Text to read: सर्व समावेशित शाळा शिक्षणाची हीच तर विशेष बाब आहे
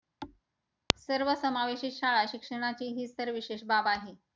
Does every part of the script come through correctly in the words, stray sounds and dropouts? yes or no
no